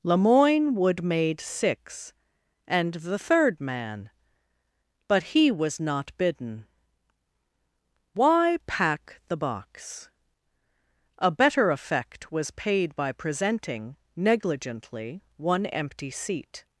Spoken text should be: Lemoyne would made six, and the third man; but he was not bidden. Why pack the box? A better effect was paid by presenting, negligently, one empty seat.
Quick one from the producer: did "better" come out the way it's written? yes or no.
yes